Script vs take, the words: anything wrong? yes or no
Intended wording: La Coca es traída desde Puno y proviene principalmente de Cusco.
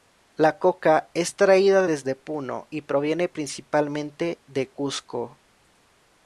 no